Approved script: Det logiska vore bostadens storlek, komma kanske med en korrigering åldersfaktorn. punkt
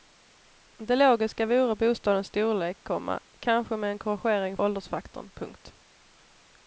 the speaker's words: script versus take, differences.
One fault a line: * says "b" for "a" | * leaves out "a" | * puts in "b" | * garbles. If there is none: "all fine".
all fine